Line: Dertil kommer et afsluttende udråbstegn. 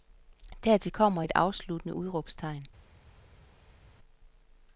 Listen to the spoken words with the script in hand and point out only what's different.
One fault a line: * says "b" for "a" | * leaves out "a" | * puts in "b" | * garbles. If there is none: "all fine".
all fine